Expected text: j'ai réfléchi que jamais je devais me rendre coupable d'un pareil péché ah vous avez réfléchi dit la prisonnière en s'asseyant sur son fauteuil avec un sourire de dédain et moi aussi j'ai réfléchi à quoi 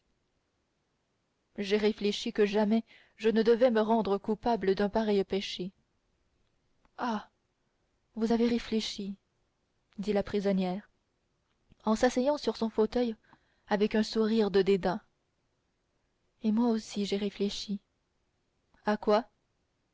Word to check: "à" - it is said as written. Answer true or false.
true